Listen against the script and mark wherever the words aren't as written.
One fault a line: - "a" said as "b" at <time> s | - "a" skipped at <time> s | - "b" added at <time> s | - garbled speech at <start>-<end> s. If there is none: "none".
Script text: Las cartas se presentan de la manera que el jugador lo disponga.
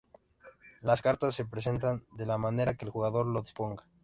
none